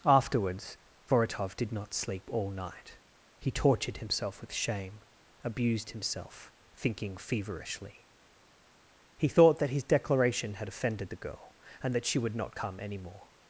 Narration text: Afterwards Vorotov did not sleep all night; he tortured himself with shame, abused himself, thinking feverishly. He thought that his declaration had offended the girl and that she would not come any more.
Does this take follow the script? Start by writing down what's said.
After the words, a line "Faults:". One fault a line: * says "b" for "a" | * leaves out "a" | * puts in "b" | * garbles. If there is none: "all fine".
Afterwards Vorotov did not sleep all night; he tortured himself with shame, abused himself, thinking feverishly. He thought that his declaration had offended the girl and that she would not come any more.
Faults:
all fine